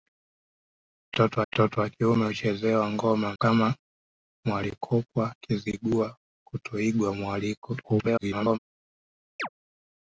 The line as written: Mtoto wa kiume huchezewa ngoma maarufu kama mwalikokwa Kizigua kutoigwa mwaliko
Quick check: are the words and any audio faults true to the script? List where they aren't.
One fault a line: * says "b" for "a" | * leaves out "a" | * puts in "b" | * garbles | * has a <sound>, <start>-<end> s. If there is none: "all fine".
* puts in "mtoto"
* leaves out "maarufu"
* garbles
* has a chirp, 9.4-9.5 s